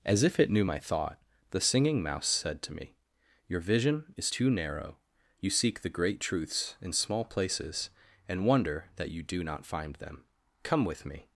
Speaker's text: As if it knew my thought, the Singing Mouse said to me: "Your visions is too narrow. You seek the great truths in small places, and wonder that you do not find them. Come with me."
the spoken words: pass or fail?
fail